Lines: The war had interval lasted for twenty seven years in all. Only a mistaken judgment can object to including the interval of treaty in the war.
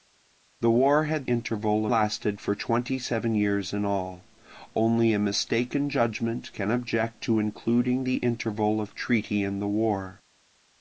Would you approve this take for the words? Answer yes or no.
yes